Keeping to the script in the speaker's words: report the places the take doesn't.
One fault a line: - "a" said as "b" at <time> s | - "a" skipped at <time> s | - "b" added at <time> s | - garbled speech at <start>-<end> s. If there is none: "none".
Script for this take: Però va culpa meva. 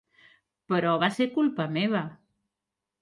- "ser" added at 1.1 s